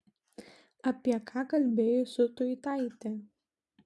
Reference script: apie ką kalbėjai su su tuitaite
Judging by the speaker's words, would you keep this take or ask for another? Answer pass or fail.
fail